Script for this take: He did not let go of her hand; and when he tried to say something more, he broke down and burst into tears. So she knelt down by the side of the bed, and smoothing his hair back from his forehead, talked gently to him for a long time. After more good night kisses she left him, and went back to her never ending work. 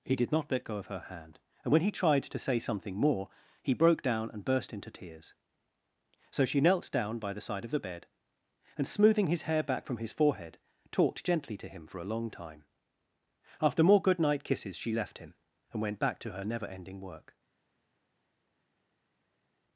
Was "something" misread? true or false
false